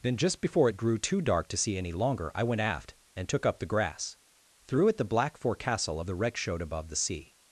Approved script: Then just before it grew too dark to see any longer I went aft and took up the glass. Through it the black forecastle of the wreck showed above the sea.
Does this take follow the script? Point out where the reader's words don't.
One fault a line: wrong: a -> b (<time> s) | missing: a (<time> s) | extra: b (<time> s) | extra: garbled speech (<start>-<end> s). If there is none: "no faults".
wrong: glass -> grass (3.7 s)